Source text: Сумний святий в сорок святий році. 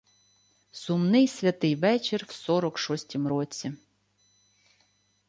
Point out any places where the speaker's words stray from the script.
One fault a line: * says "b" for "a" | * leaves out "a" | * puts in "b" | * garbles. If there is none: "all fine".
* puts in "вечір"
* says "шостім" for "святий"